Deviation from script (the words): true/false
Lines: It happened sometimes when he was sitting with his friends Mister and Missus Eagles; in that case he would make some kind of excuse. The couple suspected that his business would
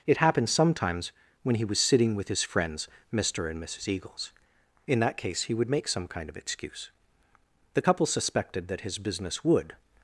false